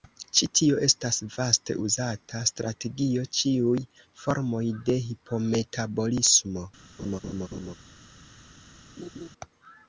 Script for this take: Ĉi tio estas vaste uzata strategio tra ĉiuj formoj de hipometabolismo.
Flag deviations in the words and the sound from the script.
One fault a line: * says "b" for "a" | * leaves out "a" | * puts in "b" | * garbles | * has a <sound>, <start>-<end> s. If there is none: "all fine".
* leaves out "tra"
* has a laugh, 7.0-7.8 s
* has a laugh, 9.0-9.3 s